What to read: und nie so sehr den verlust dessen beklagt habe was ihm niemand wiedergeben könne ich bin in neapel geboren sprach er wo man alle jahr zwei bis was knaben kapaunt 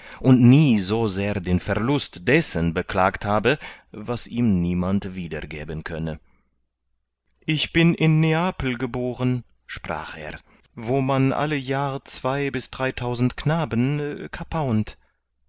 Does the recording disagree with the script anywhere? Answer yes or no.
yes